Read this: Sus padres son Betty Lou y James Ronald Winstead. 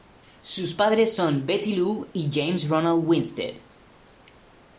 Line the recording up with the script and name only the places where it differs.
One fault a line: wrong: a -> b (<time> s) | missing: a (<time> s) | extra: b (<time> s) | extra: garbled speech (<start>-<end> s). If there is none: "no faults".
no faults